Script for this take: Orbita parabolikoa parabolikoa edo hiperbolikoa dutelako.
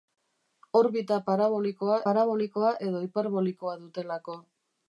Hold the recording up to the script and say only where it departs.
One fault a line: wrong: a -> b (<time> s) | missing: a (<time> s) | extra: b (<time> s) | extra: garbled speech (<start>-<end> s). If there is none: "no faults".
no faults